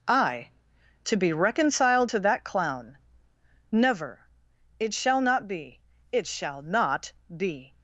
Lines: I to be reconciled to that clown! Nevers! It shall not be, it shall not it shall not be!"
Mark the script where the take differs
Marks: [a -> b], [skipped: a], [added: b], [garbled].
I to be reconciled to that clown! [Nevers! -> Never] It shall not be, it shall not [skipped: it shall not] be!"